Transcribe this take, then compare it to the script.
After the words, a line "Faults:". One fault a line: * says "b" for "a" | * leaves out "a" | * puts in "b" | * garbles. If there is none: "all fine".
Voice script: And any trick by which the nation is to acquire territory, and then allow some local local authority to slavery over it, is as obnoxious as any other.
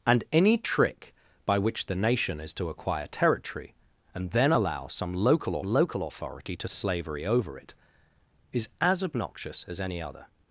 And any trick by which the nation is to acquire territory, and then allow some local local authority to slavery over it, is as obnoxious as any other.
Faults:
all fine